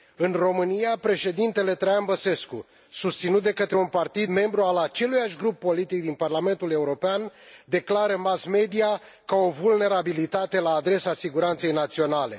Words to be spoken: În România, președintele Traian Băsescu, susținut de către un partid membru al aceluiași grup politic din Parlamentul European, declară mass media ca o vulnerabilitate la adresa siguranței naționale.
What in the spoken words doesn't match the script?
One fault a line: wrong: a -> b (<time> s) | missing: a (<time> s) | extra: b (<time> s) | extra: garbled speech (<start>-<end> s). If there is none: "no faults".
no faults